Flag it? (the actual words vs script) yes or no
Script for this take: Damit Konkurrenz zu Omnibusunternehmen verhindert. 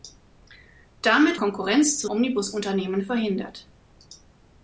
no